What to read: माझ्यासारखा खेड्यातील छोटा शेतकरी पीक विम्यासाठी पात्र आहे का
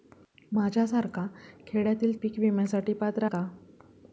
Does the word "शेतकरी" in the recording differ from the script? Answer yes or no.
yes